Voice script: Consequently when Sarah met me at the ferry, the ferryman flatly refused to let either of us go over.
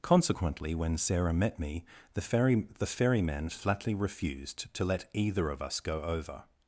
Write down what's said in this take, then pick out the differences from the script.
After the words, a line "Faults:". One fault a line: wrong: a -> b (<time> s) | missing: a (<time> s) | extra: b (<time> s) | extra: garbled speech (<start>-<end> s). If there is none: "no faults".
Consequently when Sarah met me the ferry, the ferryman flatly refused to let either of us go over.
Faults:
missing: at (1.8 s)